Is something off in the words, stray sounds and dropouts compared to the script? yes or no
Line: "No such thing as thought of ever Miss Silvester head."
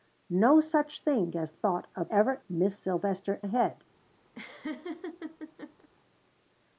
yes